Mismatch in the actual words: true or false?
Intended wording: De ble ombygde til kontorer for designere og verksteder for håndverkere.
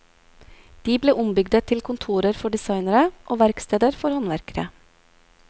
false